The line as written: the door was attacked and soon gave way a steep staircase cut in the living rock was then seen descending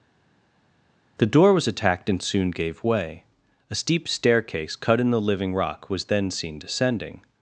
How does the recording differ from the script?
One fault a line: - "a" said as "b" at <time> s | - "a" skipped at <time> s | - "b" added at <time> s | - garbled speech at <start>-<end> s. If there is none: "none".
none